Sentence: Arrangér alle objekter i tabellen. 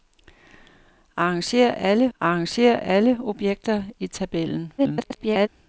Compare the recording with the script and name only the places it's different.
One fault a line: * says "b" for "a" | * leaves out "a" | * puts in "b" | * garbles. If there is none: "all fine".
* puts in "arrangér alle"
* garbles